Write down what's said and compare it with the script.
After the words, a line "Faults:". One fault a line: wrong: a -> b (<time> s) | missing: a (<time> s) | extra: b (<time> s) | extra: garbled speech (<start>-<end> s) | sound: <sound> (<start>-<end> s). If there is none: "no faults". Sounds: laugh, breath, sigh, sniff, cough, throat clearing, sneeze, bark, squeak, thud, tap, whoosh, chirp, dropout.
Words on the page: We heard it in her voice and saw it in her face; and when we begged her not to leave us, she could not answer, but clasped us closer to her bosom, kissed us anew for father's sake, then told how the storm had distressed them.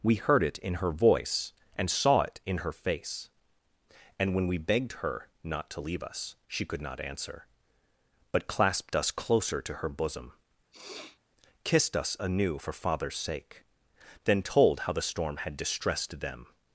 We heard it in her voice and saw it in her face; and when we begged her not to leave us, she could not answer, but clasped us closer to her bosom, kissed us anew for father's sake, then told how the storm had distressed them.
Faults:
sound: sniff (10.7-11.2 s)